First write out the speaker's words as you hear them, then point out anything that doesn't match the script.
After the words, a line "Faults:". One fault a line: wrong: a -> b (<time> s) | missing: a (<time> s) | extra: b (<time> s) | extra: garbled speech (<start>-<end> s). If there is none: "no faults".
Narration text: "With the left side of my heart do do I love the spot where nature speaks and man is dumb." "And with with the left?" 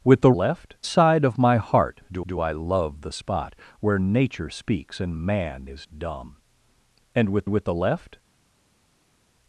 "With the left side of my heart do do I love the spot where nature speaks and man is dumb." "And with with the left?"
Faults:
no faults